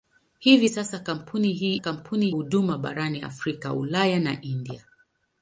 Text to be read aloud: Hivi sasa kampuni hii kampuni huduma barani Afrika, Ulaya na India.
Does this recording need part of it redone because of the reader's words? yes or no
no